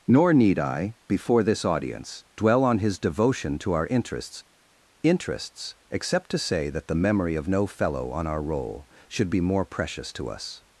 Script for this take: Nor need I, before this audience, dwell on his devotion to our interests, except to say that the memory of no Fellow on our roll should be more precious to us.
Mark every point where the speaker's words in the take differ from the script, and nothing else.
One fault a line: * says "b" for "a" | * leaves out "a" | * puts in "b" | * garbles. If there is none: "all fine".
* puts in "interests"